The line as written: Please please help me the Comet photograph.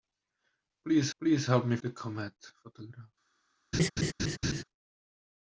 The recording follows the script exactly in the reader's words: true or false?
true